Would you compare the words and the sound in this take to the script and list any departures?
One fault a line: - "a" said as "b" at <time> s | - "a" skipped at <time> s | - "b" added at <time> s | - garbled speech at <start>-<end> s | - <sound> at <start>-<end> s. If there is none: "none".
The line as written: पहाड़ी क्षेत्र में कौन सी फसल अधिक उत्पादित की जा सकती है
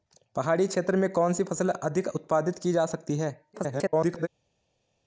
- garbled speech at 3.5-4.3 s